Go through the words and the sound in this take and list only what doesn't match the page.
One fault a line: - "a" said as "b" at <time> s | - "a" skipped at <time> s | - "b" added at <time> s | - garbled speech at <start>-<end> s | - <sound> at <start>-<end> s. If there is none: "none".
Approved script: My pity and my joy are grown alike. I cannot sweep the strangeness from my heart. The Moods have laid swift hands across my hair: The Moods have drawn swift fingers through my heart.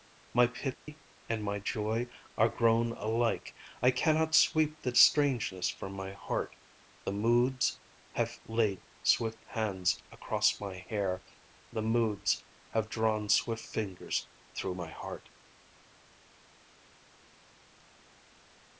- dropout at 0.7-0.9 s